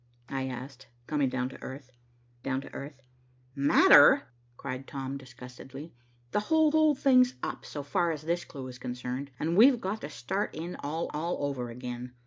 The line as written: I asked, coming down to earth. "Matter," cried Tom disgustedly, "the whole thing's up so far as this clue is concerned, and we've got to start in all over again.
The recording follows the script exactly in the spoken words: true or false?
false